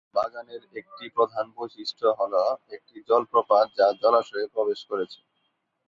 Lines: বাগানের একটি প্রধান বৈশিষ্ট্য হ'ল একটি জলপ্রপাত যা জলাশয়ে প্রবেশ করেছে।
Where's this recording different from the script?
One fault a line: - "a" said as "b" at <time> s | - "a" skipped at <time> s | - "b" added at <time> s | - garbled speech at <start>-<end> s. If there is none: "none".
none